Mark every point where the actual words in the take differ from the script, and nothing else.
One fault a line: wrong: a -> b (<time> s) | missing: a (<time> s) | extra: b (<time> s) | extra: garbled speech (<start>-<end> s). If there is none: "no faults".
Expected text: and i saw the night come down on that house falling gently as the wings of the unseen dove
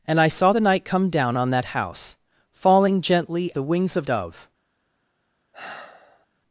missing: as (3.5 s)
missing: the unseen (4.1 s)